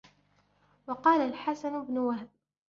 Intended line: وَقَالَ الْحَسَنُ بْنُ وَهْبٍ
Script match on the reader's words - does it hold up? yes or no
yes